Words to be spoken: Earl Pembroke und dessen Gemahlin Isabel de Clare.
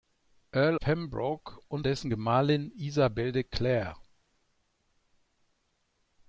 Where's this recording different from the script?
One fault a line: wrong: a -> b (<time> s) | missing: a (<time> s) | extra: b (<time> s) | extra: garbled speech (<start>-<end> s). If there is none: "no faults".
no faults